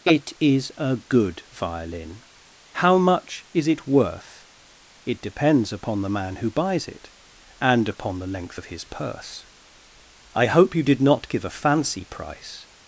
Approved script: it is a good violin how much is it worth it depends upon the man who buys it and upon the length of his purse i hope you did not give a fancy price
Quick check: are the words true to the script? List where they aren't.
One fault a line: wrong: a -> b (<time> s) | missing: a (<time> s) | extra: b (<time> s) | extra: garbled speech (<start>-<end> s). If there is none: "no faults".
no faults